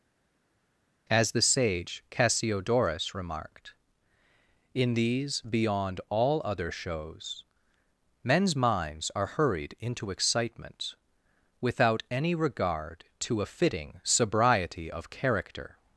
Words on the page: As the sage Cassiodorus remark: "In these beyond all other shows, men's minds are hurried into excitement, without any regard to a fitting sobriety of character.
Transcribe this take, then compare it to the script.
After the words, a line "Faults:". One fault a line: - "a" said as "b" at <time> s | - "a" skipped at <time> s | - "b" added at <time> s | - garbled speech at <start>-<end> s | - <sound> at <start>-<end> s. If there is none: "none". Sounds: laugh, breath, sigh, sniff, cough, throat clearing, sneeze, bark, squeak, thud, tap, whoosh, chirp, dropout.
As the sage Cassiodorus remarked: "In these beyond all other shows, men's minds are hurried into excitement, without any regard to a fitting sobriety of character.
Faults:
- "remark" said as "remarked" at 3.1 s